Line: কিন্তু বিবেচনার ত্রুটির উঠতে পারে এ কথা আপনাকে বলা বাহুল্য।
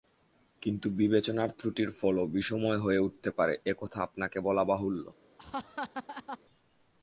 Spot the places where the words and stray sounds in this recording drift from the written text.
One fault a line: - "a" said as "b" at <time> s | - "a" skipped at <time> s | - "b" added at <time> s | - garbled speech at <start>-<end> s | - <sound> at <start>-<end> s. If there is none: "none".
- "ফলও বিষময় হয়ে" added at 1.9 s
- laugh at 5.4-6.4 s